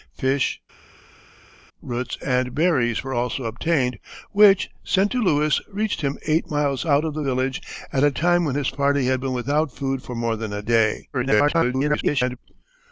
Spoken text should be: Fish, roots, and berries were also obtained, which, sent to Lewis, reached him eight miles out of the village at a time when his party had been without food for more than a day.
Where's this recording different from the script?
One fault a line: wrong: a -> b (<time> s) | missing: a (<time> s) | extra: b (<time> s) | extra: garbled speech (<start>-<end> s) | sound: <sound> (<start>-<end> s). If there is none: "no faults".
extra: garbled speech (11.1-12.4 s)